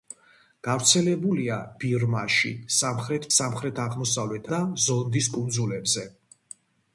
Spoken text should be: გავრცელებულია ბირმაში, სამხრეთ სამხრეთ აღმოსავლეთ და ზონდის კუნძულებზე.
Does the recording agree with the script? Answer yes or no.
yes